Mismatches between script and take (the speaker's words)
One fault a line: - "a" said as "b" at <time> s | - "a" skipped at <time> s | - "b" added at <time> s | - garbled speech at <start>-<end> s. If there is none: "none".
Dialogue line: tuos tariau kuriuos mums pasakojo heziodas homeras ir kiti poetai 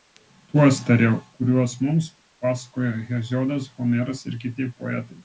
none